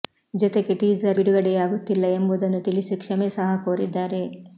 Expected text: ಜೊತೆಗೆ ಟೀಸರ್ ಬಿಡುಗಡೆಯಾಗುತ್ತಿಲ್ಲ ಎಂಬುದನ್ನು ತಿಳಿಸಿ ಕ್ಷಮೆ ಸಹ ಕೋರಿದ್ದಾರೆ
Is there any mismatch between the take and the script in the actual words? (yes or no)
no